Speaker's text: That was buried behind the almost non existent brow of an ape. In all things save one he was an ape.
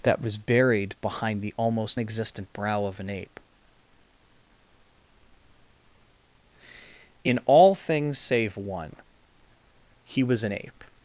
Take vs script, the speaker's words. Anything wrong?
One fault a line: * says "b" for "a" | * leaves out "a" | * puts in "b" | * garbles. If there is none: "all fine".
* leaves out "non"